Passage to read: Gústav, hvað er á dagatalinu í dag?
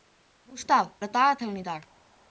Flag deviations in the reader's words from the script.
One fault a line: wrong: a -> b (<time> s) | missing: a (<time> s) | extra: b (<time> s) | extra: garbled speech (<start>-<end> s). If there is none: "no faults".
missing: hvað (0.8 s)